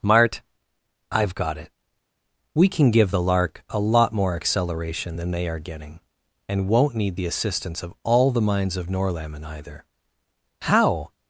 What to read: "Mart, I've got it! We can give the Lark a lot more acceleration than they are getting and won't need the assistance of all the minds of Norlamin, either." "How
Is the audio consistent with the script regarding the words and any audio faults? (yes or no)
yes